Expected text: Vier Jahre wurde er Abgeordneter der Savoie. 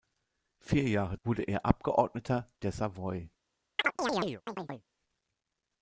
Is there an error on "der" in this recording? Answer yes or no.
no